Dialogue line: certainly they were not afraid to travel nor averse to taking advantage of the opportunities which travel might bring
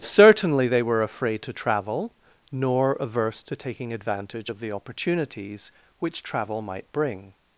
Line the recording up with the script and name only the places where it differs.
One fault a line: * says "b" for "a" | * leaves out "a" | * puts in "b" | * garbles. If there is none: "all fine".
* leaves out "not"